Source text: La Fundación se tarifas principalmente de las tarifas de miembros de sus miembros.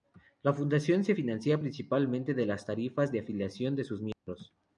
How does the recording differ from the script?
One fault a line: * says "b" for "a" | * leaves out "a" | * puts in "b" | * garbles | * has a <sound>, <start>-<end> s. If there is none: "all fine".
* says "financia" for "tarifas"
* says "afiliación" for "miembros"
* has a dropout, 4.1-4.3 s